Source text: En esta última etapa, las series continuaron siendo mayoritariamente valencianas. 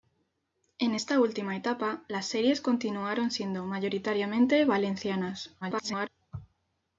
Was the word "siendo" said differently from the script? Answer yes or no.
no